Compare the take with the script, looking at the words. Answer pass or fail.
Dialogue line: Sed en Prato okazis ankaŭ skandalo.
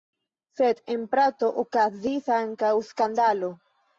pass